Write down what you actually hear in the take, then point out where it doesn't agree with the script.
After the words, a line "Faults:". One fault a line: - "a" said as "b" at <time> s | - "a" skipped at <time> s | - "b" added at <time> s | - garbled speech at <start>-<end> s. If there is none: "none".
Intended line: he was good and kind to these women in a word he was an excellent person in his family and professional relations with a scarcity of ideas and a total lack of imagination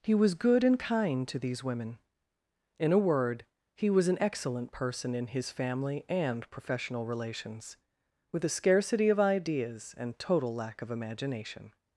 he was good and kind to these women in a word he was an excellent person in his family and professional relations with a scarcity of ideas and total lack of imagination
Faults:
- "a" skipped at 10.2 s